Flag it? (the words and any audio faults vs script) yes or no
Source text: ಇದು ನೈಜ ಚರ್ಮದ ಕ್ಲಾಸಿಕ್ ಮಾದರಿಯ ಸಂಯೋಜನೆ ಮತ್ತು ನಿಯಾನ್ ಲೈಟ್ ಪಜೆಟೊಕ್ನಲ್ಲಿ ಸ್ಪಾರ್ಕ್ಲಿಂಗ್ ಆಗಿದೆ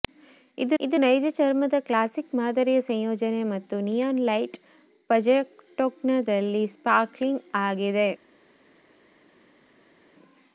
yes